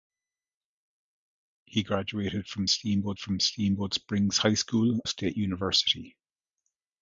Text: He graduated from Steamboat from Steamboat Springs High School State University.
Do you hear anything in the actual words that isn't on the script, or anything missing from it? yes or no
no